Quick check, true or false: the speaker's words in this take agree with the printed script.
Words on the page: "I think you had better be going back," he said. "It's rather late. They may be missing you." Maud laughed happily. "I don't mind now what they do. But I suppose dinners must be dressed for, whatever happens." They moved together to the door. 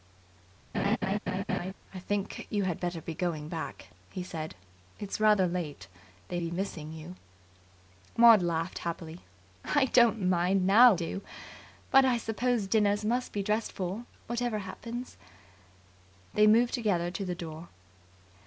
false